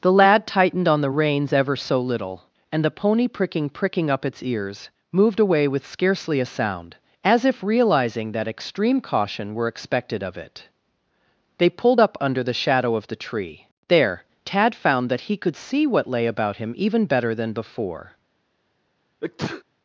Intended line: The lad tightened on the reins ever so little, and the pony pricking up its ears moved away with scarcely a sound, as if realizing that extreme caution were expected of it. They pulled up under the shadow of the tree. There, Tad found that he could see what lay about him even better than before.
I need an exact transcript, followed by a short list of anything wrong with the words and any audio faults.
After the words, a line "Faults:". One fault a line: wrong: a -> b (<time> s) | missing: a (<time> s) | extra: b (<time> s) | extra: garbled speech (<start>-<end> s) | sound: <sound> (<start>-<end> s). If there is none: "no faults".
The lad tightened on the reins ever so little, and the pony pricking pricking up its ears moved away with scarcely a sound, as if realizing that extreme caution were expected of it. They pulled up under the shadow of the tree. There, Tad found that he could see what lay about him even better than before.
Faults:
extra: pricking (3.7 s)
sound: sneeze (19.2-19.6 s)